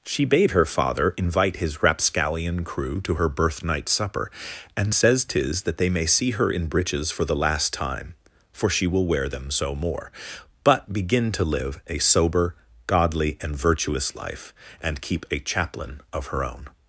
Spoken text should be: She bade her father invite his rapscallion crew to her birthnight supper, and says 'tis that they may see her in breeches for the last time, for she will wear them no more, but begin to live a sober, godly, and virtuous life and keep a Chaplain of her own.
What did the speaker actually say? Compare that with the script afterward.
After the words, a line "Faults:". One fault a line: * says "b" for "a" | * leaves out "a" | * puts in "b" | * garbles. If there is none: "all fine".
She bade her father invite his rapscallion crew to her birthnight supper, and says 'tis that they may see her in breeches for the last time, for she will wear them so more, but begin to live a sober, godly, and virtuous life and keep a Chaplain of her own.
Faults:
* says "so" for "no"